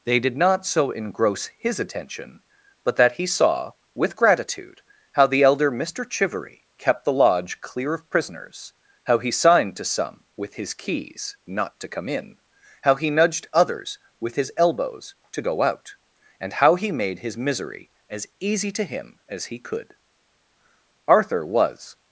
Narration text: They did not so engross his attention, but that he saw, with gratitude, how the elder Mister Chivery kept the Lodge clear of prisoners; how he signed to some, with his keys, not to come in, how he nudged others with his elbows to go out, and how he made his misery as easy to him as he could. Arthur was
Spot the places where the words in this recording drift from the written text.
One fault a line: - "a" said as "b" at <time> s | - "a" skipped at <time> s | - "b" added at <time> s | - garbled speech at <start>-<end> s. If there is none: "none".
none